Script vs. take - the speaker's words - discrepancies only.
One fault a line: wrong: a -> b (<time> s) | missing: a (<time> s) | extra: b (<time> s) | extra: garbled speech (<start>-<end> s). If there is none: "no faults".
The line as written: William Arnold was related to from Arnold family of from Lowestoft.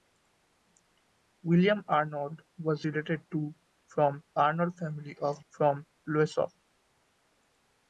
no faults